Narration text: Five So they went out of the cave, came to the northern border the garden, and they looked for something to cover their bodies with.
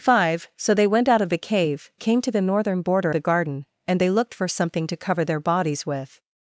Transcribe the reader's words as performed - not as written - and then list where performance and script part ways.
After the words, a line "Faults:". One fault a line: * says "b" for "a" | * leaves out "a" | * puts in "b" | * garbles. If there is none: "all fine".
Five So they went out of the cave, came to the northern border the garden, and they looked for something to cover their bodies with.
Faults:
all fine